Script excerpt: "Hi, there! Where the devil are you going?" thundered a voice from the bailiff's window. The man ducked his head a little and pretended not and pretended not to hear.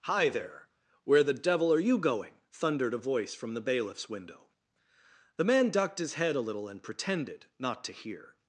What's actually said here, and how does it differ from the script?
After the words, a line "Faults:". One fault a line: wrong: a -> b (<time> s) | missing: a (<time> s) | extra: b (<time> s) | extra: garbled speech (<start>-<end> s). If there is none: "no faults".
"Hi, there! Where the devil are you going?" thundered a voice from the bailiff's window. The man ducked his head a little and pretended not to hear.
Faults:
missing: and pretended not (7.8 s)